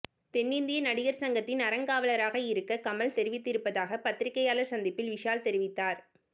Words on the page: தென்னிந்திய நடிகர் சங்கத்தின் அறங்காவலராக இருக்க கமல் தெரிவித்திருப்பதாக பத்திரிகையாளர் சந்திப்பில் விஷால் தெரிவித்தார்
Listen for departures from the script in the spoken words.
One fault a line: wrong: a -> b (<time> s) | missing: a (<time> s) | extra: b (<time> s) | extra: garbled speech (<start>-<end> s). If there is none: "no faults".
no faults